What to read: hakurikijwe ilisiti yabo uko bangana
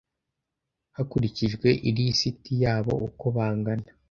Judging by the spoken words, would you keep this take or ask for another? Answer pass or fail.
pass